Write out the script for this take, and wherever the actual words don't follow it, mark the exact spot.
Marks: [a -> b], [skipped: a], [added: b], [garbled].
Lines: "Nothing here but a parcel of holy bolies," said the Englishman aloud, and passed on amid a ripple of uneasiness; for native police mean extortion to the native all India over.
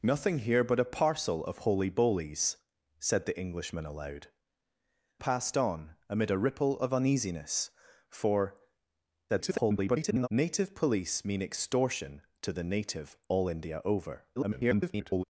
"Nothing here but a parcel of holy bolies," said the Englishman aloud, [skipped: and] passed on amid a ripple of uneasiness; for [garbled] native police mean extortion to the native all India over. [garbled]